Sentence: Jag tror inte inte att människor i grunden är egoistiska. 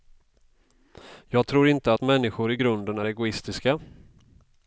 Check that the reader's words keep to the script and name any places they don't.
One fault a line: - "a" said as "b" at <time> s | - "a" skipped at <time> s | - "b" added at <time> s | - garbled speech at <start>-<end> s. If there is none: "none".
- "inte" skipped at 1.9 s